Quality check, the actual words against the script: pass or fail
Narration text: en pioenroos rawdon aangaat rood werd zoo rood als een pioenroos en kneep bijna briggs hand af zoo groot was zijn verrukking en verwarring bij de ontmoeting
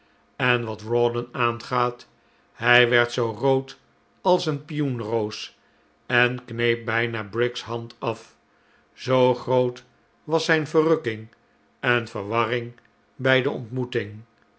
fail